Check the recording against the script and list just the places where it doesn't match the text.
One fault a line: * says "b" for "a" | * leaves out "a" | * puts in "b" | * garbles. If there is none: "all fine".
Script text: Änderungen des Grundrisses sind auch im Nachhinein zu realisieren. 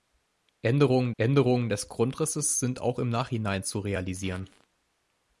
* puts in "änderungen"